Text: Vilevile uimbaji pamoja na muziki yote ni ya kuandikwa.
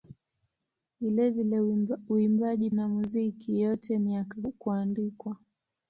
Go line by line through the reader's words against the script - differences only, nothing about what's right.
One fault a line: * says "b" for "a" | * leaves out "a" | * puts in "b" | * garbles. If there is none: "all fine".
* leaves out "pamoja"